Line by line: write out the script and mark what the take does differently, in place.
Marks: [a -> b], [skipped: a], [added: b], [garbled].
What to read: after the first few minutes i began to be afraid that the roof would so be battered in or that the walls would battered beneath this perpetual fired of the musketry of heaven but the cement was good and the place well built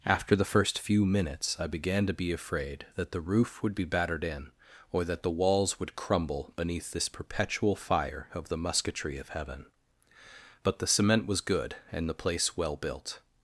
after the first few minutes i began to be afraid that the roof would [skipped: so] be battered in or that the walls would [battered -> crumble] beneath this perpetual [fired -> fire] of the musketry of heaven but the cement was good and the place well built